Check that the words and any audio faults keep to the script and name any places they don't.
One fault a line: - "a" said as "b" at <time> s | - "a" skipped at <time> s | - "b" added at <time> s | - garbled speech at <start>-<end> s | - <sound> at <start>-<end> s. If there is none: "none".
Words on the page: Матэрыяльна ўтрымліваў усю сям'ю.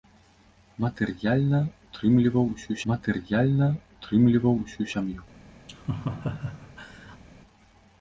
- "матэрыяльна ўтрымліваў усю" added at 2.9 s
- laugh at 5.7-7.2 s